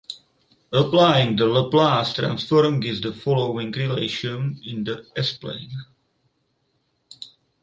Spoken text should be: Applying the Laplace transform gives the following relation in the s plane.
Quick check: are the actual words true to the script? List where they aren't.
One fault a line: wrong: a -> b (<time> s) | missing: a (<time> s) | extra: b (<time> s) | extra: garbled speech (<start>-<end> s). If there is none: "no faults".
no faults